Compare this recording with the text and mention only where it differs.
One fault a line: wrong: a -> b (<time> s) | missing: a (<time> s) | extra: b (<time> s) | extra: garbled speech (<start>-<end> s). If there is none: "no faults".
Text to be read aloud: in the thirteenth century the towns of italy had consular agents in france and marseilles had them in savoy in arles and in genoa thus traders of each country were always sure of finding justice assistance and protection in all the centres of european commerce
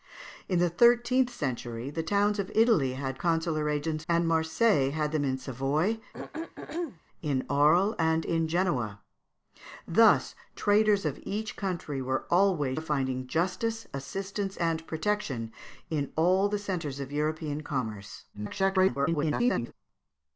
missing: in france (4.1 s)
missing: sure (12.8 s)
extra: garbled speech (18.3-19.7 s)